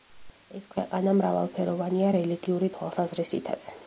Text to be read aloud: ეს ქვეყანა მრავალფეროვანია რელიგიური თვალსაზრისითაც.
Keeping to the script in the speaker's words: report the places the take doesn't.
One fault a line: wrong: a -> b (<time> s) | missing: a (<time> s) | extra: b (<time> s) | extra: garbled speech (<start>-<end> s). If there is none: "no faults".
no faults